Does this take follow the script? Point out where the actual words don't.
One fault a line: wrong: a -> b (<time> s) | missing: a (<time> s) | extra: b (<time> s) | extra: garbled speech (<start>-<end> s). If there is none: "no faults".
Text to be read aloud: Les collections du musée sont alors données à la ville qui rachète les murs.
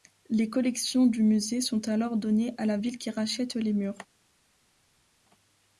no faults